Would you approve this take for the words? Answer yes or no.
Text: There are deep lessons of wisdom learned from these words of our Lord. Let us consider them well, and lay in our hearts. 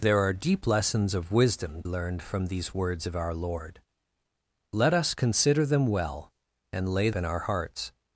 yes